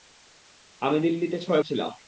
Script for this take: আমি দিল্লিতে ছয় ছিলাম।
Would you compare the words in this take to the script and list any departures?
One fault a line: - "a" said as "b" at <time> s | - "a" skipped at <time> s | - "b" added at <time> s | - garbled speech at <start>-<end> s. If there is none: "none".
none